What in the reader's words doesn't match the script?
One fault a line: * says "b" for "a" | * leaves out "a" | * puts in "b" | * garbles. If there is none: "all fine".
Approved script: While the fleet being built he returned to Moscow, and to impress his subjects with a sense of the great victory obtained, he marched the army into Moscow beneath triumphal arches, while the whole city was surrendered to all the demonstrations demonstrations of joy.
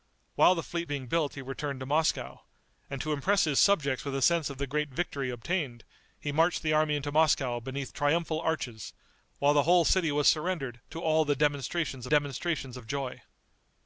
all fine